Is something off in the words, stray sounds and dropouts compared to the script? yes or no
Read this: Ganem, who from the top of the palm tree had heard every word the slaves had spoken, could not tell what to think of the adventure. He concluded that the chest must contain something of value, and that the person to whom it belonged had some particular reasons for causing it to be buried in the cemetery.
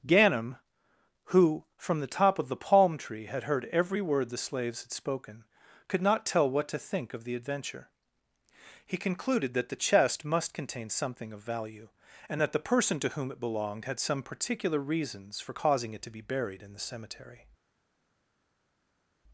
no